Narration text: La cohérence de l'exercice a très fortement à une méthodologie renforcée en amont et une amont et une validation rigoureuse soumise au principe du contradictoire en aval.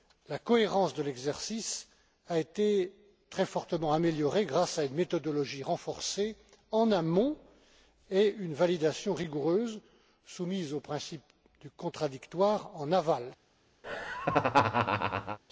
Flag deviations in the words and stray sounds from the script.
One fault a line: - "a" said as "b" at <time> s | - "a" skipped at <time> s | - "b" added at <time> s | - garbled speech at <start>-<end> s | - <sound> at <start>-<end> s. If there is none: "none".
- "été" added at 2.4 s
- "améliorée grâce" added at 3.9 s
- "amont et une" skipped at 8.5 s
- laugh at 13.8-15.4 s